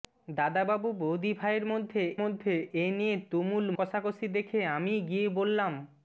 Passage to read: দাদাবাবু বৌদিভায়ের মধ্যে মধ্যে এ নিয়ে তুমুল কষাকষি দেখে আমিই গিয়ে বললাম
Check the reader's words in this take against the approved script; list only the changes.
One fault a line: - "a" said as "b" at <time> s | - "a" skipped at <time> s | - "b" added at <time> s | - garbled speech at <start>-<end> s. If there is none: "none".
none